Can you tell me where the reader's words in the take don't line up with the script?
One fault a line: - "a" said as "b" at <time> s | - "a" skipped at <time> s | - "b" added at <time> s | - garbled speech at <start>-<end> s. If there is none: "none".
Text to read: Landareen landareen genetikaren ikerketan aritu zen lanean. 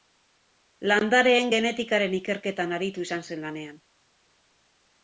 - "landareen" skipped at 1.5 s
- "izan" added at 3.1 s